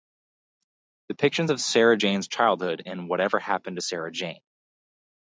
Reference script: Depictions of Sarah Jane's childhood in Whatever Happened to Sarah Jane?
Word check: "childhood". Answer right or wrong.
right